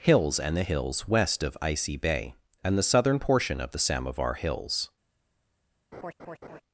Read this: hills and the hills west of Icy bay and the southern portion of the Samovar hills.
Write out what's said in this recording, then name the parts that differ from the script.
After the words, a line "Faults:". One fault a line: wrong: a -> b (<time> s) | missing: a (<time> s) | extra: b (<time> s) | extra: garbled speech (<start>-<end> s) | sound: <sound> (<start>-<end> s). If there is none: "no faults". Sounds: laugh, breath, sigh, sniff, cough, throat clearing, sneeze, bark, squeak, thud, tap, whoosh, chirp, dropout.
hills and the hills west of Icy bay and the southern portion of the Samovar hills.
Faults:
sound: laugh (5.9-6.6 s)